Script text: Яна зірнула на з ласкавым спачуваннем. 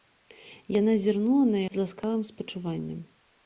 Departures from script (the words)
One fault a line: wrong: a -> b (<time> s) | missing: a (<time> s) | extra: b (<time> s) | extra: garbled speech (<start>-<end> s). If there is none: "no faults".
no faults